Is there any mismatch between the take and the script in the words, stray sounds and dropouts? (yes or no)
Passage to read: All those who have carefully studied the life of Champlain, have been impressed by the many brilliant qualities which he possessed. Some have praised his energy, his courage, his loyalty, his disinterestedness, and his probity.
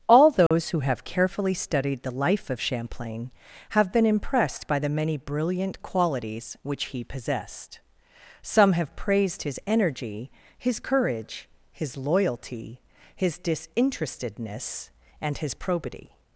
yes